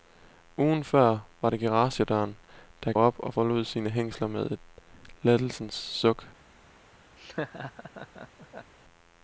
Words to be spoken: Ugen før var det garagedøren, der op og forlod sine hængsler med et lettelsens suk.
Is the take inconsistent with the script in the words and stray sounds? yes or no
yes